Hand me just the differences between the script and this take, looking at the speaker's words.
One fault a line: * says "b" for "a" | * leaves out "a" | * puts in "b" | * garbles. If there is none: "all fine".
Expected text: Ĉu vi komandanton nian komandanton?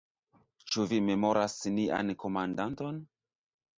* says "memoras" for "komandanton"